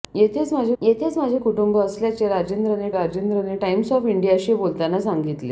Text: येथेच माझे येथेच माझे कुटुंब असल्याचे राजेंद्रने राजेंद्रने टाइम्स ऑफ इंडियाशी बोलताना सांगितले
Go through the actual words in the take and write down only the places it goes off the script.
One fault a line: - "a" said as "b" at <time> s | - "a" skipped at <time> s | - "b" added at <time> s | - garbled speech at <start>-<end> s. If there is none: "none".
none